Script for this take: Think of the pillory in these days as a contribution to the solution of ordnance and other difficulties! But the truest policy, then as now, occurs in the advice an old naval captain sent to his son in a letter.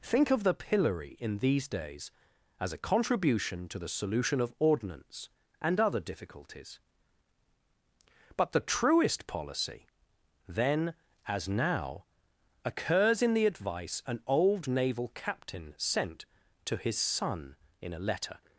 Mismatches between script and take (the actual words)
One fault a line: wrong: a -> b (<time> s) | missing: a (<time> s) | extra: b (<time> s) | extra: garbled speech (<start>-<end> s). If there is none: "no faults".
no faults